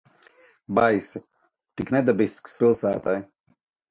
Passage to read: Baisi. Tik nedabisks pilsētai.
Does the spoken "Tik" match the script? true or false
true